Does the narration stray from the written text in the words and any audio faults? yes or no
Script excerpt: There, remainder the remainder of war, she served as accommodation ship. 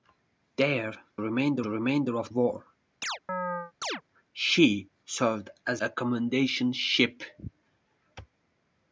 yes